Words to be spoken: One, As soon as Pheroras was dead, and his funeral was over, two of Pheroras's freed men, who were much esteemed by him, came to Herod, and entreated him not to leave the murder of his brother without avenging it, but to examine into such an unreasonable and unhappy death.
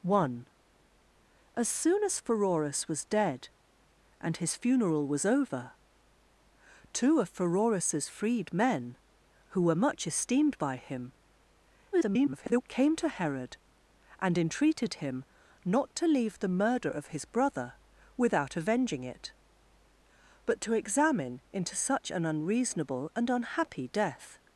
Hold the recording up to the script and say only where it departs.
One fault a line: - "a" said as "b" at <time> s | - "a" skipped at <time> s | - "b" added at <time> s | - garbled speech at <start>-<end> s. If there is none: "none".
- garbled speech at 11.9-12.6 s